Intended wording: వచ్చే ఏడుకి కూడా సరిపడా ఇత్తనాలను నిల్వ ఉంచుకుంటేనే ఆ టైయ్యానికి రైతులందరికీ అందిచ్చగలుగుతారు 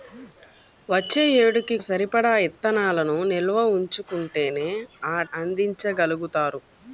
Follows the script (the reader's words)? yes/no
no